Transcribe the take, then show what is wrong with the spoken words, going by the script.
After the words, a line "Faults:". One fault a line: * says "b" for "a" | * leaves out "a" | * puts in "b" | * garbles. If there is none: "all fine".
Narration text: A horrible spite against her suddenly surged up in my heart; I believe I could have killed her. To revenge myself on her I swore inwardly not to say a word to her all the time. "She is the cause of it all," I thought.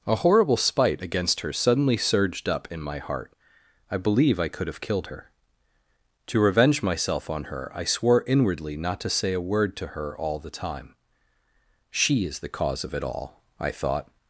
A horrible spite against her suddenly surged up in my heart; I believe I could have killed her. To revenge myself on her I swore inwardly not to say a word to her all the time. "She is the cause of it all," I thought.
Faults:
all fine